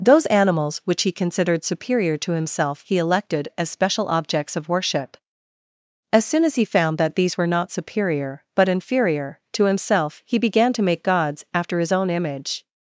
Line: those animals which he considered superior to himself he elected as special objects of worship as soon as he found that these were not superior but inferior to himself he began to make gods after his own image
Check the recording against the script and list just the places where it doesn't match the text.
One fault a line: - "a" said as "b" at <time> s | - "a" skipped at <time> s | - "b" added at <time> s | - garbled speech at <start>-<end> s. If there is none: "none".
none